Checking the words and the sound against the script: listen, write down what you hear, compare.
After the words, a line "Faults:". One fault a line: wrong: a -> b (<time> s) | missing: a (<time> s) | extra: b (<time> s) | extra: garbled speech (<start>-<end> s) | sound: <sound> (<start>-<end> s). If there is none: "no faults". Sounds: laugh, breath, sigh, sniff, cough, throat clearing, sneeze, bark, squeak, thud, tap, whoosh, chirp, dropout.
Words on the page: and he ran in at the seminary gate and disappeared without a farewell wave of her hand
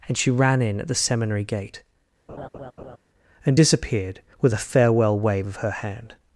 and she ran in at the seminary gate and disappeared with a farewell wave of her hand
Faults:
wrong: he -> she (0.2 s)
sound: laugh (2.3-3.0 s)
wrong: without -> with (4.4 s)